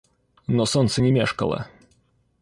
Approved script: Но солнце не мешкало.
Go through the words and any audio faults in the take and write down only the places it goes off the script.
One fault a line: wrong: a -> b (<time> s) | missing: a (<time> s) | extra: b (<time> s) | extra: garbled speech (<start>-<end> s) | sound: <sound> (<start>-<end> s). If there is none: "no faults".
no faults